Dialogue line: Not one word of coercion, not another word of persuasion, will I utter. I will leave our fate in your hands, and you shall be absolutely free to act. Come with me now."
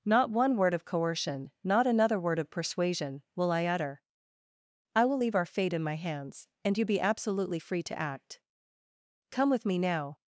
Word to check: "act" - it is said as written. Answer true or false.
true